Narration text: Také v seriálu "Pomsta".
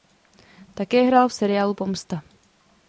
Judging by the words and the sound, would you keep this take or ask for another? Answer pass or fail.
fail